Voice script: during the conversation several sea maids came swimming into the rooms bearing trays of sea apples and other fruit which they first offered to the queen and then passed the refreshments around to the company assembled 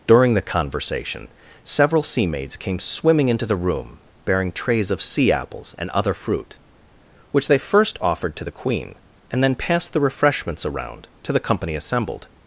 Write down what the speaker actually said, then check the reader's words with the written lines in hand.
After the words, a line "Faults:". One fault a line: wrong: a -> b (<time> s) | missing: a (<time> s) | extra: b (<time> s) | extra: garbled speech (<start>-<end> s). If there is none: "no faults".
during the conversation several sea maids came swimming into the room bearing trays of sea apples and other fruit which they first offered to the queen and then passed the refreshments around to the company assembled
Faults:
wrong: rooms -> room (3.5 s)